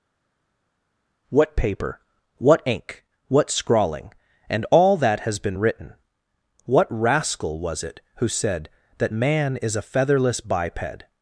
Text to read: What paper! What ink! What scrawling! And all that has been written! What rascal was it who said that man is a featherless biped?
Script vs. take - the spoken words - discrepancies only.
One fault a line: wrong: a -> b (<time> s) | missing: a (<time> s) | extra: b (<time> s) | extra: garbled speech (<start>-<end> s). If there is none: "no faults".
no faults